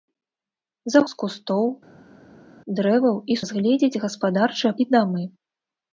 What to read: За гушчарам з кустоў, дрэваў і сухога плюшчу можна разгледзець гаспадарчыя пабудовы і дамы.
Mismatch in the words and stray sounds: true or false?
true